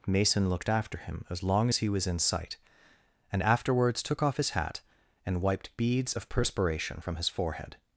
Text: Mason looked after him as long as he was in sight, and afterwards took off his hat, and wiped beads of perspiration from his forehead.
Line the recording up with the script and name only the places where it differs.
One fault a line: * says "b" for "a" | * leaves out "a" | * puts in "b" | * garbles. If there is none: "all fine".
all fine